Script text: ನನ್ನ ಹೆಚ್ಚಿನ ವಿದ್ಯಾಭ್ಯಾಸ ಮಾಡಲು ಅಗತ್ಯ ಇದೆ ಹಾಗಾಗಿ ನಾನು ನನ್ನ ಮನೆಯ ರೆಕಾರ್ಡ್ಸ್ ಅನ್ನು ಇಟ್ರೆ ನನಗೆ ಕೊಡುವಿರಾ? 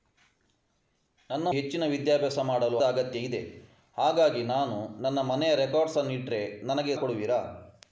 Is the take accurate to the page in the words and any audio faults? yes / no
yes